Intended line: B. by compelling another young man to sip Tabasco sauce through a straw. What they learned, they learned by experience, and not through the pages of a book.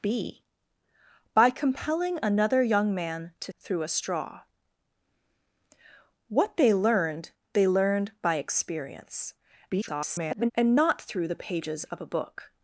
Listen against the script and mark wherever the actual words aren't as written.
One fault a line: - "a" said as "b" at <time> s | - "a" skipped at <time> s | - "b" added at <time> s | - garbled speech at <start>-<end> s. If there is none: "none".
- "sip Tabasco sauce" skipped at 3.5 s
- garbled speech at 9.7-10.5 s